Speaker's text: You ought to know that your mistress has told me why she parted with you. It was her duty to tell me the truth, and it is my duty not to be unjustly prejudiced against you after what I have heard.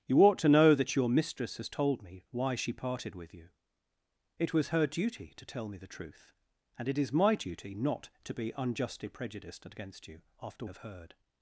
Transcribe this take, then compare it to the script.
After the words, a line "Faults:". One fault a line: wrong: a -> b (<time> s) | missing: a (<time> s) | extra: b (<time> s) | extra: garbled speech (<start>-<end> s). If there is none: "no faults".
You ought to know that your mistress has told me why she parted with you. It was her duty to tell me the truth, and it is my duty not to be unjustly prejudiced against you after have heard.
Faults:
missing: what I (10.7 s)